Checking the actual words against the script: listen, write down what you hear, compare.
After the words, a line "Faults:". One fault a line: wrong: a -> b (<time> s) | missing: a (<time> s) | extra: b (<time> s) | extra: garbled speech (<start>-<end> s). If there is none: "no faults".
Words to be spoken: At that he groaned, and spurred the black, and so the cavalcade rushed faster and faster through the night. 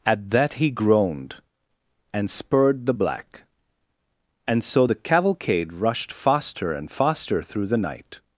At that he groaned, and spurred the black, and so the cavalcade rushed faster and faster through the night.
Faults:
no faults